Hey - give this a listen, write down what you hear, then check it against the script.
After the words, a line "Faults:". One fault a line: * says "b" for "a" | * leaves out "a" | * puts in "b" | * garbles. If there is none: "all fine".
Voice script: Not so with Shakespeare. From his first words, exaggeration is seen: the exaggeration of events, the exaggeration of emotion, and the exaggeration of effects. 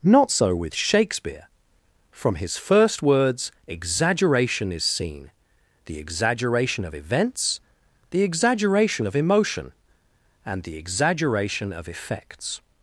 Not so with Shakespeare. From his first words, exaggeration is seen: the exaggeration of events, the exaggeration of emotion, and the exaggeration of effects.
Faults:
all fine